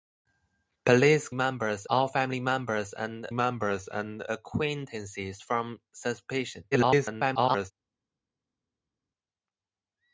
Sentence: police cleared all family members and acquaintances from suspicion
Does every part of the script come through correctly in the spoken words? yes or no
no